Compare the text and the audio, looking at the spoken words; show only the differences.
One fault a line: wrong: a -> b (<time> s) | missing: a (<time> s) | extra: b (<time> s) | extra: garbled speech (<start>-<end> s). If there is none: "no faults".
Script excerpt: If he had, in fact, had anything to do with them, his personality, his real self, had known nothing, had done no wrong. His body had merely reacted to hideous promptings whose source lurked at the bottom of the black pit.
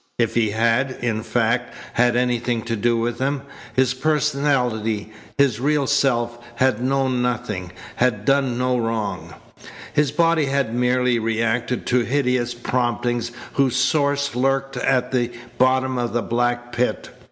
no faults